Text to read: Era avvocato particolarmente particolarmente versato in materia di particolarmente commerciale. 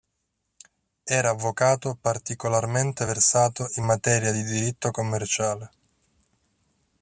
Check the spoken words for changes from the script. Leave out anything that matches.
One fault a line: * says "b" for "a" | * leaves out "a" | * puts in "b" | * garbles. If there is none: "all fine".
* leaves out "particolarmente"
* says "diritto" for "particolarmente"